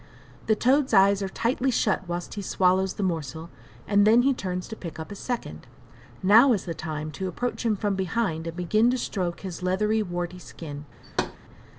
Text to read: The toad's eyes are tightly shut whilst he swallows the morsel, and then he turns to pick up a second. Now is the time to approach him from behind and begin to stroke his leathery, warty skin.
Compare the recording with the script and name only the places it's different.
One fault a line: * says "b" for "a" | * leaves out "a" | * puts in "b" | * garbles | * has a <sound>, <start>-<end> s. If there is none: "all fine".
* has a thud, 11.0-11.4 s